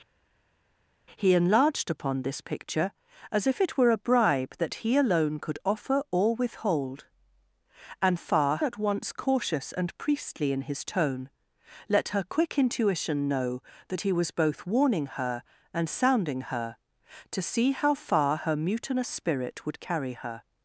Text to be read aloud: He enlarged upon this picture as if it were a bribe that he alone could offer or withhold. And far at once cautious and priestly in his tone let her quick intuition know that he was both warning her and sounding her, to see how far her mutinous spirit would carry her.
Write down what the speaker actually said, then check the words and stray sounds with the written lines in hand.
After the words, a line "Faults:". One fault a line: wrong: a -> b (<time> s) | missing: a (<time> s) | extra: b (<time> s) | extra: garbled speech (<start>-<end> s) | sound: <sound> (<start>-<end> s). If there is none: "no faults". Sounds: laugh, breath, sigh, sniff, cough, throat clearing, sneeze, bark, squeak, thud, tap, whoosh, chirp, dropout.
He enlarged upon this picture as if it were a bribe that he alone could offer or withhold. And far at once cautious and priestly in his tone let her quick intuition know that he was both warning her and sounding her, to see how far her mutinous spirit would carry her.
Faults:
no faults